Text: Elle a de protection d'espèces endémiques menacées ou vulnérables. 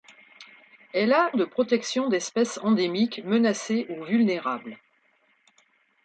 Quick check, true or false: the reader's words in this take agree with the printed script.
true